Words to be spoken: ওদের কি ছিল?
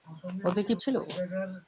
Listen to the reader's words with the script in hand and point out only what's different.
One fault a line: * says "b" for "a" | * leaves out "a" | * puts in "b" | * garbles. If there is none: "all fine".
all fine